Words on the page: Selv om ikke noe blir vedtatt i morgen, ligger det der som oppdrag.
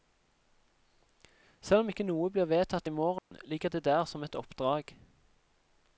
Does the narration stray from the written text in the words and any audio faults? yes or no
yes